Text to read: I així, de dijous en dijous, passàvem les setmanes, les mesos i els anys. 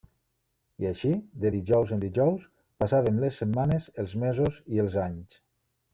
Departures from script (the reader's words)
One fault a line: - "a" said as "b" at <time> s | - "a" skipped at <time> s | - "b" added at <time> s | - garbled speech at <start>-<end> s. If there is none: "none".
- "les" said as "els" at 4.0 s